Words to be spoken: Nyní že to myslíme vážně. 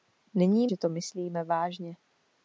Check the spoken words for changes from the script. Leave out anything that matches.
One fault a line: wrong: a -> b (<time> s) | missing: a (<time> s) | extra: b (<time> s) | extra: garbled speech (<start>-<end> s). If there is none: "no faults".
no faults